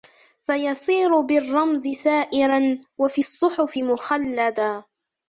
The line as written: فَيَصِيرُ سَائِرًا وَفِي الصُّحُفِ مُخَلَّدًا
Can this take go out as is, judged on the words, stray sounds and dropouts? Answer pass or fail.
fail